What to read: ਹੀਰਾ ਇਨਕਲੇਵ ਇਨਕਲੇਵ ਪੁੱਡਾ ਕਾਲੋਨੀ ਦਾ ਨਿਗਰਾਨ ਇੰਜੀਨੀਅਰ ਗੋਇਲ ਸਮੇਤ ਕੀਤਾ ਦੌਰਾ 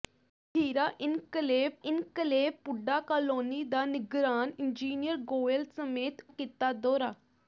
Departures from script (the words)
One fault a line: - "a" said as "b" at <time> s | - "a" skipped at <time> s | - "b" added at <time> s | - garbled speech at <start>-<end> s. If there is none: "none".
none